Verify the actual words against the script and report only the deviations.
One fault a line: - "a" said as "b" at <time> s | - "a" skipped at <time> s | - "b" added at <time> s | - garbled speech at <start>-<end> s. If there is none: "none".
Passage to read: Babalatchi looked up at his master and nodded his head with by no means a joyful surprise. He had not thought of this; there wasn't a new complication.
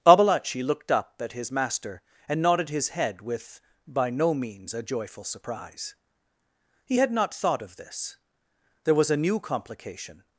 - "wasn't" said as "was" at 9.0 s